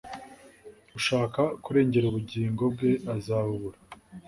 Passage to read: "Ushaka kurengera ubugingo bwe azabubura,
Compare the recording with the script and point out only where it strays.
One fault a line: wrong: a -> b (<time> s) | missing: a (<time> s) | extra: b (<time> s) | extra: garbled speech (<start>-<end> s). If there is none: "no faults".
no faults